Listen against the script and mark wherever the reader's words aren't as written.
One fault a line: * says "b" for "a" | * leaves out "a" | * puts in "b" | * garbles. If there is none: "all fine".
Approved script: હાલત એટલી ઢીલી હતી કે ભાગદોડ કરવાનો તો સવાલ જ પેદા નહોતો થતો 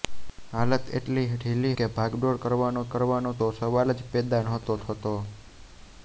* leaves out "હતી"
* puts in "કરવાનો"